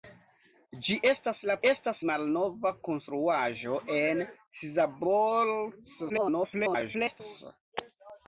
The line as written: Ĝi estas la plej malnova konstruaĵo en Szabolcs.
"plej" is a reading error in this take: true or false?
true